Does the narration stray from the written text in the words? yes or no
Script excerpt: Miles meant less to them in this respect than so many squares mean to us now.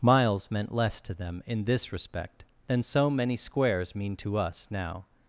no